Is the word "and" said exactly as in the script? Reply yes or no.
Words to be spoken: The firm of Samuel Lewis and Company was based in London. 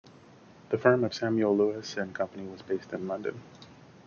yes